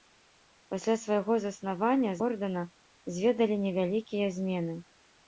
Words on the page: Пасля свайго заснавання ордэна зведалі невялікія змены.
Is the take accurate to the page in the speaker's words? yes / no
yes